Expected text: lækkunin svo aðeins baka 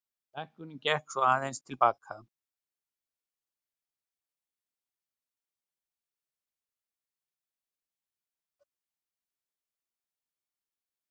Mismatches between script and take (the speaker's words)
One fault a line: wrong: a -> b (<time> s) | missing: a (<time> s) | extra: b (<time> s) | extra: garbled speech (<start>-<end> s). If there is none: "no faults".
extra: gekk (0.8 s)
extra: til (1.6 s)